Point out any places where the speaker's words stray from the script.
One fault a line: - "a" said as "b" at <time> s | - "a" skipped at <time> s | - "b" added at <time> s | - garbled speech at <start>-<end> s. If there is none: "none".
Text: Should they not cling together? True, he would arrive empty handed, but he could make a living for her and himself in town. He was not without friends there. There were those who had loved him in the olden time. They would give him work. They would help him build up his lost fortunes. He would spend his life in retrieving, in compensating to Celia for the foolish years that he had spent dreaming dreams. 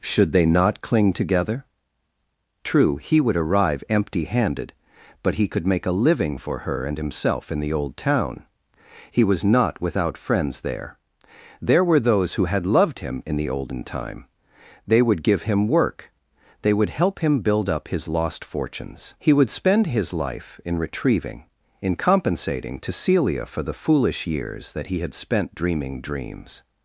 - "the old" added at 7.6 s